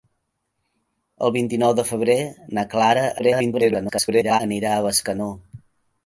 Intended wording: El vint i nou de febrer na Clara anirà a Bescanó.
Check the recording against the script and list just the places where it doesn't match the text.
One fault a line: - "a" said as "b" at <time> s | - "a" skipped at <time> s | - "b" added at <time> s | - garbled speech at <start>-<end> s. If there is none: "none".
- garbled speech at 3.2-4.4 s